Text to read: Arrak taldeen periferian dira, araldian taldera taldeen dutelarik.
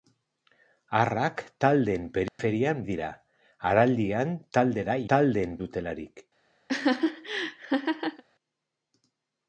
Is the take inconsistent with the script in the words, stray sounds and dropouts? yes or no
yes